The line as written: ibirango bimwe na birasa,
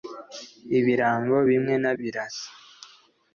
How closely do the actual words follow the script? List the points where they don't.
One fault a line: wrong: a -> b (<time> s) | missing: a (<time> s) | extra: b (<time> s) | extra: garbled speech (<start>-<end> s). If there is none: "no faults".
no faults